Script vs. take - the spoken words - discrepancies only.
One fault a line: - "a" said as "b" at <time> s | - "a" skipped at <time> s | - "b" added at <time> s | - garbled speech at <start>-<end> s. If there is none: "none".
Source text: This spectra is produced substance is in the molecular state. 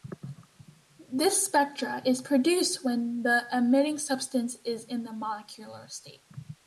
- "when the emitting" added at 2.9 s